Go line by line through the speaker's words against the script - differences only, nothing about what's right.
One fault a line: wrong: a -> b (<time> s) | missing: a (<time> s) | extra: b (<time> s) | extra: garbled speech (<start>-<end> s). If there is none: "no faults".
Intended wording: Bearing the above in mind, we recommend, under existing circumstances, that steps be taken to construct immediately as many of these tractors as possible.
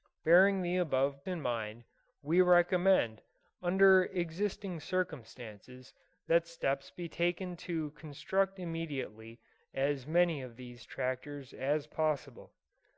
no faults